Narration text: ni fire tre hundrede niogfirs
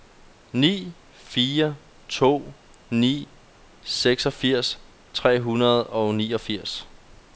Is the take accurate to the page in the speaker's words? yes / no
no